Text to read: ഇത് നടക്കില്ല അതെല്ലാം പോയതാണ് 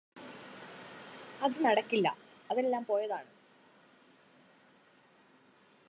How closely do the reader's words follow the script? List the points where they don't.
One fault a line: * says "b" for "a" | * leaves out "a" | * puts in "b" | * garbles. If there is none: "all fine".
* says "അത്" for "ഇത്"